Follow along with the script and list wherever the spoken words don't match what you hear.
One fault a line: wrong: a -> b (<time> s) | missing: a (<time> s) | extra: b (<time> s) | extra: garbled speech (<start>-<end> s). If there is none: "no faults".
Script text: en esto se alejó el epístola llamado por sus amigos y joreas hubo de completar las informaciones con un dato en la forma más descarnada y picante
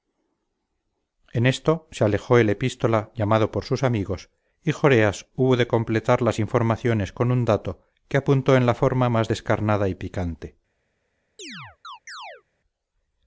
extra: que apuntó (8.1 s)